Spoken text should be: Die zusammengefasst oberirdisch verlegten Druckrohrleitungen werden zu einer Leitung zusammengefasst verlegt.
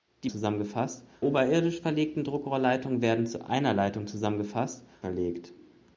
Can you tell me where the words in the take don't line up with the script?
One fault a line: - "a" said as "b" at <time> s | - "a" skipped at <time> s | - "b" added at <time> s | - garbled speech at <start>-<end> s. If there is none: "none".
none